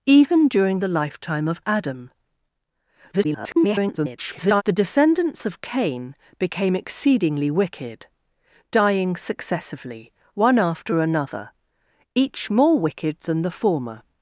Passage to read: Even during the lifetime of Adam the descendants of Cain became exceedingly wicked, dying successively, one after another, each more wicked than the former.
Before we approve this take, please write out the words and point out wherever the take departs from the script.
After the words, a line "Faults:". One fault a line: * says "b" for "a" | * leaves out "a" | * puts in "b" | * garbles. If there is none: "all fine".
Even during the lifetime of Adam [garbled] the descendants of Cain became exceedingly wicked, dying successively, one after another, each more wicked than the former.
Faults:
* garbles